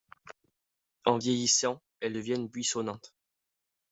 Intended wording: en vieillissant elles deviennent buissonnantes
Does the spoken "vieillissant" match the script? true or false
true